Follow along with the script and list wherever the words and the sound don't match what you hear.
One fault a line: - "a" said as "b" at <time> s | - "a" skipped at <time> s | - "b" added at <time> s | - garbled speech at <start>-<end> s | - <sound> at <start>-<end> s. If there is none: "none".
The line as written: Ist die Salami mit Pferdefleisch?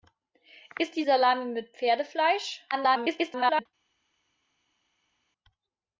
- garbled speech at 2.7-3.7 s